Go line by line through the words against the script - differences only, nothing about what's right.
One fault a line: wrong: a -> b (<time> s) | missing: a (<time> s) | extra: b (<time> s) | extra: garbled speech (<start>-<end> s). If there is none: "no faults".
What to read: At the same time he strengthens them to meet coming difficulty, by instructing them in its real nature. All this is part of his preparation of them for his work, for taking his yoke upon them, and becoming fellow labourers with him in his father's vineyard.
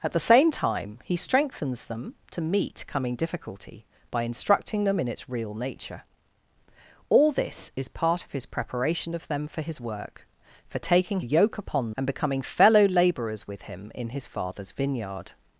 missing: his (11.2 s)
missing: them (11.9 s)